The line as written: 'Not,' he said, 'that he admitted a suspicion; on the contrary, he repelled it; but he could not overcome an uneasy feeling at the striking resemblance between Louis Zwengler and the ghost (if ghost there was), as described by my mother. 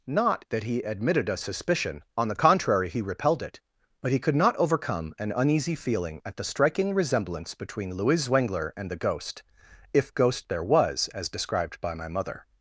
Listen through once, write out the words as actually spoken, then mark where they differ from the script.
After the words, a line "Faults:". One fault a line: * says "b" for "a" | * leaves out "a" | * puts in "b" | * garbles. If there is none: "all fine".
'Not,' 'that he admitted a suspicion; on the contrary, he repelled it; but he could not overcome an uneasy feeling at the striking resemblance between Louis Zwengler and the ghost (if ghost there was), as described by my mother.
Faults:
* leaves out "he said"